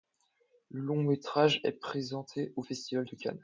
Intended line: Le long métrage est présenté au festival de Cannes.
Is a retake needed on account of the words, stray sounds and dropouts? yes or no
no